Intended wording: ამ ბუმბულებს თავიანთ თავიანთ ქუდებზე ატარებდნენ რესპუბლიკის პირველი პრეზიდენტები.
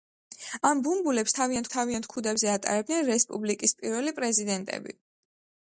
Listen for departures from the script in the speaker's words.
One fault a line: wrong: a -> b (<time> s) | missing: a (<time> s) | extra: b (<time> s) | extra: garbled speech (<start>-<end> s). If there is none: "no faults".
no faults